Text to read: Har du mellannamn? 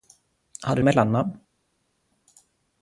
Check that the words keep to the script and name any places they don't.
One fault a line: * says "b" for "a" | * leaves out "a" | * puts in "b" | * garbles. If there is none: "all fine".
all fine